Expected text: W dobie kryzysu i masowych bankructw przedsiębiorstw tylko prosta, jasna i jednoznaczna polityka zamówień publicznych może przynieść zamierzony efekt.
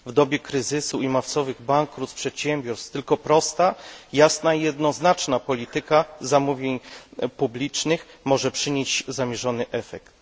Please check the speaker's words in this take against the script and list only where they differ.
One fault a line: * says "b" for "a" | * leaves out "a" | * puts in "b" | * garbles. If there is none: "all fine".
all fine